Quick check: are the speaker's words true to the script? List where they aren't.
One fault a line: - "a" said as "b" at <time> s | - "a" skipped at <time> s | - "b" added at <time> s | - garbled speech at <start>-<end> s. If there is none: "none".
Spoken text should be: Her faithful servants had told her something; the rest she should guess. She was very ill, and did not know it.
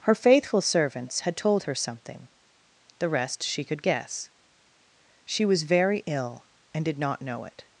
- "should" said as "could" at 3.6 s